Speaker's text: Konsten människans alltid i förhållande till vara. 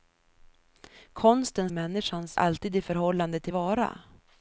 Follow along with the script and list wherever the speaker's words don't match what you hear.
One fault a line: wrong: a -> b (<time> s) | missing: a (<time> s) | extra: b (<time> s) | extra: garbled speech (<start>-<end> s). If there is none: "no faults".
no faults